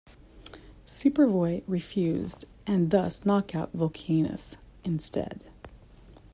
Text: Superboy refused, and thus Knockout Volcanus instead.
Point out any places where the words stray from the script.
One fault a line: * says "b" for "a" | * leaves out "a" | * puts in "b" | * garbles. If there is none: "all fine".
all fine